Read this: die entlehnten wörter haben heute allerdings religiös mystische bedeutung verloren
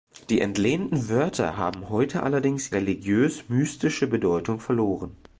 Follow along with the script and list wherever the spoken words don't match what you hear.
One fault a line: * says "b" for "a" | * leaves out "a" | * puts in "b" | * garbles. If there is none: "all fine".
all fine